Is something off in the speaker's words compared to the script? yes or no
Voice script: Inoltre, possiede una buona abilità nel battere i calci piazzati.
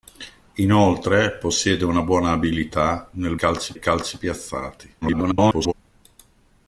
yes